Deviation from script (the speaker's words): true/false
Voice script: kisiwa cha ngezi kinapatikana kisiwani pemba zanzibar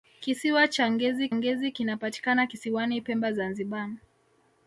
true